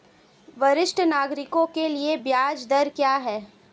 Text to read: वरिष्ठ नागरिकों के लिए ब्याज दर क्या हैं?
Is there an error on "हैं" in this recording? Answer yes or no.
no